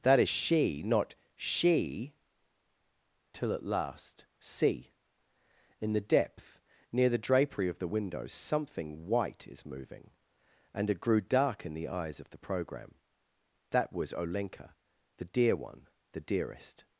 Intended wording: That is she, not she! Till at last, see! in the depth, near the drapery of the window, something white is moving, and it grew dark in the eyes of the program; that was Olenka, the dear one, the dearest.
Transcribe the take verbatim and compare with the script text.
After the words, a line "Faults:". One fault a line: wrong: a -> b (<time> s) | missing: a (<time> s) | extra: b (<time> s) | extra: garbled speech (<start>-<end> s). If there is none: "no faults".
That is she, not she! Till at last, see! in the depth, near the drapery of the window, something white is moving, and it grew dark in the eyes of the program; that was Olenka, the dear one, the dearest.
Faults:
no faults